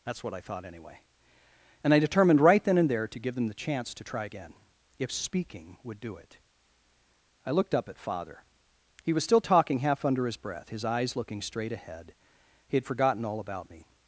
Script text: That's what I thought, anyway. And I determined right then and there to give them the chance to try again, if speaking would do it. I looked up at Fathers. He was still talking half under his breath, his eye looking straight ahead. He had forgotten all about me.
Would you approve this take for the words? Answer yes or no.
no